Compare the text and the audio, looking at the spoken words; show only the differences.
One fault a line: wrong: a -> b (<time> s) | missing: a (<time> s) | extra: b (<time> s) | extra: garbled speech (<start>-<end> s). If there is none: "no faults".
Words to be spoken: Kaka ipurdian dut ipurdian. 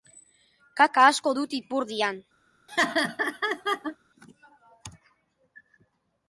wrong: ipurdian -> asko (1.1 s)